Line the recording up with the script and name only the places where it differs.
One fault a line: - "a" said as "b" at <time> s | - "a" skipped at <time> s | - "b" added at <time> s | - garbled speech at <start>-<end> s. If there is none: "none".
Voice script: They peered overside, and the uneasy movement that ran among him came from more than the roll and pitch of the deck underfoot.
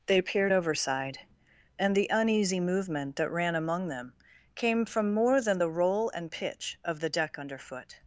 - "him" said as "them" at 3.9 s